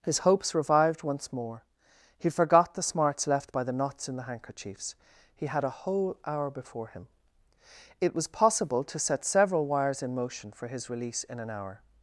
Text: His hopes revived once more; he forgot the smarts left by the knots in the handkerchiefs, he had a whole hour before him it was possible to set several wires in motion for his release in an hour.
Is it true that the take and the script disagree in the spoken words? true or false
false